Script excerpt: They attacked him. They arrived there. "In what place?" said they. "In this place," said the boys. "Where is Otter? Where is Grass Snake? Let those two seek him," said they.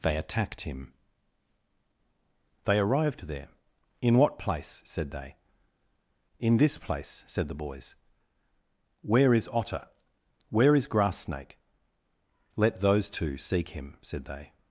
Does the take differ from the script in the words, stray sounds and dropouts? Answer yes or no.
no